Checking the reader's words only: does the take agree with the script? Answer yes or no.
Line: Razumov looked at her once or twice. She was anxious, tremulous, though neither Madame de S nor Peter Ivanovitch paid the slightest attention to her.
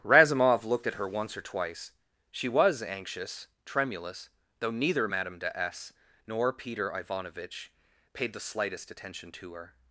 yes